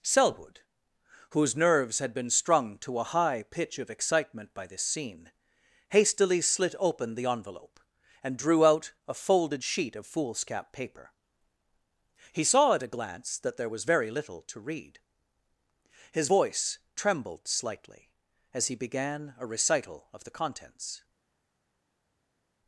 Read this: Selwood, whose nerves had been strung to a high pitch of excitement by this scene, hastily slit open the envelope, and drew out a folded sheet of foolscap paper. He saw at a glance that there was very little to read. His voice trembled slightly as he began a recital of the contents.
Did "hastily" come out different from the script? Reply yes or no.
no